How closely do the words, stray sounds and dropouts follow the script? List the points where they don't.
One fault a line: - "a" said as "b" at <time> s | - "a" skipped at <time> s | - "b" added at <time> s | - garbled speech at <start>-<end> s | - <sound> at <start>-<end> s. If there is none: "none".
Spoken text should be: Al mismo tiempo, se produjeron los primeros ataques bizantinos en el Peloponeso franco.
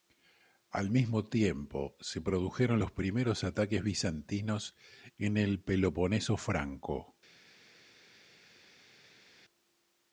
none